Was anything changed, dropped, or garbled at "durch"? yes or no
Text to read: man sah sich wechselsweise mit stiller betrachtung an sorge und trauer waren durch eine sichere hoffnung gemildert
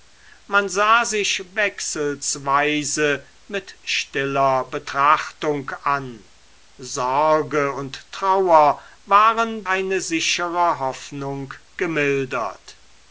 yes